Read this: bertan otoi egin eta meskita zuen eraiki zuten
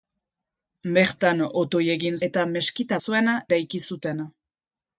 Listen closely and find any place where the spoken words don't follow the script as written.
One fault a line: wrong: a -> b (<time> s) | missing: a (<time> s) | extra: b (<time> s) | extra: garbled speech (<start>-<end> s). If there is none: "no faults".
no faults